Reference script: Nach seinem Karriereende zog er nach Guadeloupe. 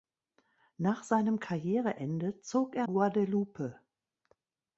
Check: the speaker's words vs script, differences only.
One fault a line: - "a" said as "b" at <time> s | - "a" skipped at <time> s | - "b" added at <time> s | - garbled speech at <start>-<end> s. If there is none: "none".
- "nach" skipped at 2.9 s